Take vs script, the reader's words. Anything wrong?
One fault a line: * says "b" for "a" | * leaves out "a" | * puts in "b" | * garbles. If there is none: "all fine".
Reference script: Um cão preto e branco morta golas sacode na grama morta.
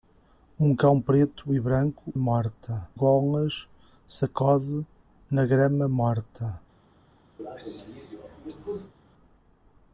all fine